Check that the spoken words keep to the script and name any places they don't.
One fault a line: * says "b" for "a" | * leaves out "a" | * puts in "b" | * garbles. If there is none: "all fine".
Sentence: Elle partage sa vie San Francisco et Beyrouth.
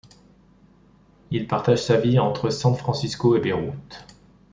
* says "Il" for "Elle"
* puts in "entre"